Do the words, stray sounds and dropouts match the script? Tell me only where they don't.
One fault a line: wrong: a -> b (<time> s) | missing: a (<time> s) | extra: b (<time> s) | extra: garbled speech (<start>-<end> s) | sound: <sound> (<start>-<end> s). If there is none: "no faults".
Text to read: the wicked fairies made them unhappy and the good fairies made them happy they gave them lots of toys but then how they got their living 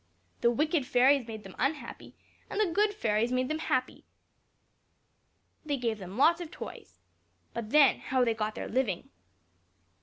no faults